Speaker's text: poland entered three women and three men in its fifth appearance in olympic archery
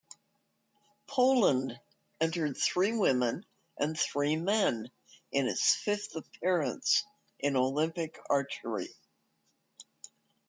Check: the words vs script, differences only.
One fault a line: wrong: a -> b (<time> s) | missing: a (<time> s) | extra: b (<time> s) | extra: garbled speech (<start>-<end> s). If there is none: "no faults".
no faults